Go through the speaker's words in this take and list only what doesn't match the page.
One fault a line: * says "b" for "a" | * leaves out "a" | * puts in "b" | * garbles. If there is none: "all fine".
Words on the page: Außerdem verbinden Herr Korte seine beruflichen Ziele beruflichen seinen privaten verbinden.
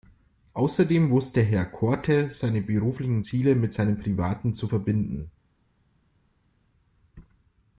* says "wusste" for "verbinden"
* says "mit" for "beruflichen"
* puts in "zu"